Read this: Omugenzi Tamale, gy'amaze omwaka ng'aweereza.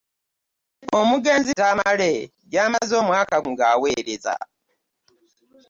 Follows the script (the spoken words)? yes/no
yes